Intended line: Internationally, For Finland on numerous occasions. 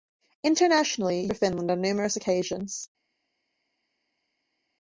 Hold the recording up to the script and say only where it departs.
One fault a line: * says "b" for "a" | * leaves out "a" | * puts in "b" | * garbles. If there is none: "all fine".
all fine